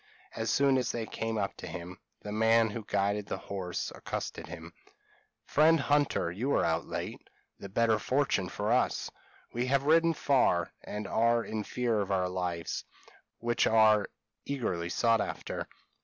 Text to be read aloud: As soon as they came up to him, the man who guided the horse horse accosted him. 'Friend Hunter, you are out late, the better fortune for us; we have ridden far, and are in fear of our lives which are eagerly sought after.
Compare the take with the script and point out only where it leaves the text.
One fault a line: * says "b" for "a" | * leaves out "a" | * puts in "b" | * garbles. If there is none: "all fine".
* leaves out "horse"